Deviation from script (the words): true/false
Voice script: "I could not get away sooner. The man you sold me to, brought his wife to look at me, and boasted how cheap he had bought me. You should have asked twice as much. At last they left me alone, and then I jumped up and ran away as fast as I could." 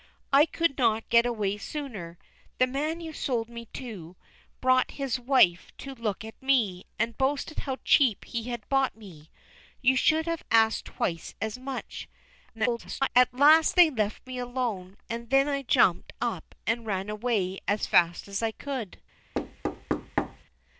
true